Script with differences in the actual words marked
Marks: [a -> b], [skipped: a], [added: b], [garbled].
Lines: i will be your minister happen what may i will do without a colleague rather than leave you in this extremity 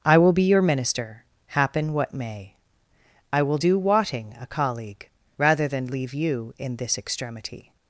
i will be your minister happen what may i will do [without -> wotting] a colleague rather than leave you in this extremity